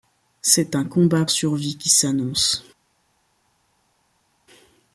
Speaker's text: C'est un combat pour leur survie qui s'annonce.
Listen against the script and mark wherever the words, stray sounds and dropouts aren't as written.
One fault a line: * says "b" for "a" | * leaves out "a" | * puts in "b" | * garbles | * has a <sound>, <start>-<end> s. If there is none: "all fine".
* leaves out "pour leur"